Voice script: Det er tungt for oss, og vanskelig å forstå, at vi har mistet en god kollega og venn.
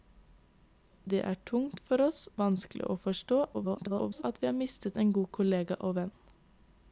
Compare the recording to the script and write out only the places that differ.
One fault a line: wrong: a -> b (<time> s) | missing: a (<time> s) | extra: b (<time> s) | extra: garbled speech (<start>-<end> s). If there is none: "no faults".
missing: og (2.2 s)
extra: garbled speech (3.5-4.2 s)